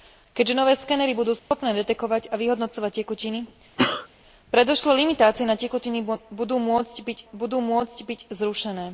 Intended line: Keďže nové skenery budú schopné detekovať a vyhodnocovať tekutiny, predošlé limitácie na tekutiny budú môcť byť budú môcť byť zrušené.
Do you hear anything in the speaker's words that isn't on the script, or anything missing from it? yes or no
no